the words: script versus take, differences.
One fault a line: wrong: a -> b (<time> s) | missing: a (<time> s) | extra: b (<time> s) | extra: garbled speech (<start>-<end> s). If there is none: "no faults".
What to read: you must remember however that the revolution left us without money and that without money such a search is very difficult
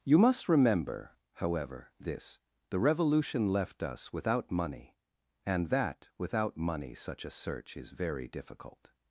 wrong: that -> this (2.0 s)